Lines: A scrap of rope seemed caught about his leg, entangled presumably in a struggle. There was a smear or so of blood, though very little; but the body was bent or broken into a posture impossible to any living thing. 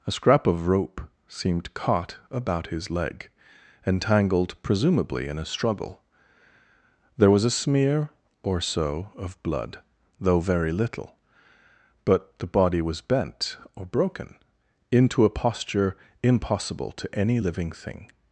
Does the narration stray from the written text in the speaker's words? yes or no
no